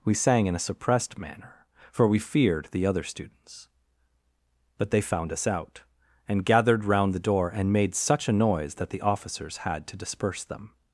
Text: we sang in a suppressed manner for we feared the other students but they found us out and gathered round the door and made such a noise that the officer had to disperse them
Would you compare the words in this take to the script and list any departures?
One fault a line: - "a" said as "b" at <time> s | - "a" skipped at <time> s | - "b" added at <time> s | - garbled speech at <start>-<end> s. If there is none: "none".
- "officer" said as "officers" at 9.0 s